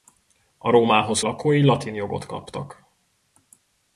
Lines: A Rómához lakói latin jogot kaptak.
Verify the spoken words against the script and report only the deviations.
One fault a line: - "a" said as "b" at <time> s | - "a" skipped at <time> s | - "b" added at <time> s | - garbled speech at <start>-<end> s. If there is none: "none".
none